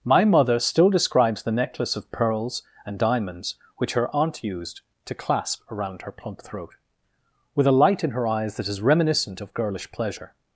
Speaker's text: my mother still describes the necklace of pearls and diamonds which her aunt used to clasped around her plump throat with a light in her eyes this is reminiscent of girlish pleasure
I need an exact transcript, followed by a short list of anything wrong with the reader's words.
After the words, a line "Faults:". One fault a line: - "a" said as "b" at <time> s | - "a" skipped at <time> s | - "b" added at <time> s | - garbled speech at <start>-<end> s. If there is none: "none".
my mother still describes the necklace of pearls and diamonds which her aunt used to clasp around her plump throat with a light in her eyes that is reminiscent of girlish pleasure
Faults:
- "clasped" said as "clasp" at 5.1 s
- "this" said as "that" at 8.6 s